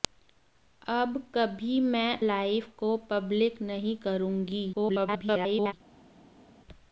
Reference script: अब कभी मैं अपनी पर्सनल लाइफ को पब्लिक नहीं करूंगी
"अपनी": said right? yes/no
no